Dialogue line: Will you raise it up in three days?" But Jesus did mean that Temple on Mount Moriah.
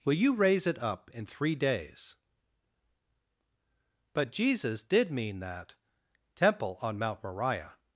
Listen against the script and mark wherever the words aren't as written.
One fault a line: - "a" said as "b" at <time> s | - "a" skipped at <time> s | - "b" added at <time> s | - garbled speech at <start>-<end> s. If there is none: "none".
none